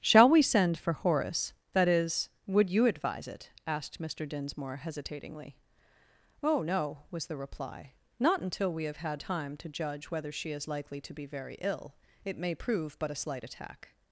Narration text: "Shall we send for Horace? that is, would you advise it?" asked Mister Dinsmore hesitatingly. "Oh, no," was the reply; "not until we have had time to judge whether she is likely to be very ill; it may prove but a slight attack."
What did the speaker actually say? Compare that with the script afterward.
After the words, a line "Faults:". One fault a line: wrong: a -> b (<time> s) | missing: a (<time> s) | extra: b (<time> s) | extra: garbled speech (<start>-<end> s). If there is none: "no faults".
"Shall we send for Horace? that is, would you advise it?" asked Mister Dinsmore hesitatingly. "Oh, no," was the reply; "not until we have had time to judge whether she is likely to be very ill; it may prove but a slight attack."
Faults:
no faults